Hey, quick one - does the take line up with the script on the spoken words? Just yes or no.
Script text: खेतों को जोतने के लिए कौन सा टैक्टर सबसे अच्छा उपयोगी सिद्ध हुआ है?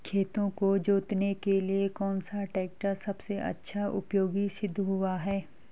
yes